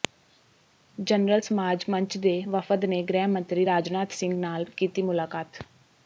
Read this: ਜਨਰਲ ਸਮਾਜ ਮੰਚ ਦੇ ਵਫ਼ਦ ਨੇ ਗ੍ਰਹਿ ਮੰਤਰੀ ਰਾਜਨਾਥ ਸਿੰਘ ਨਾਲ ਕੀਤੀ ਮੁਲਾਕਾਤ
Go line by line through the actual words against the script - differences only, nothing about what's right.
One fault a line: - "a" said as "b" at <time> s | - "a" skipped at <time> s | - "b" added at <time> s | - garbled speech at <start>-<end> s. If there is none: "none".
none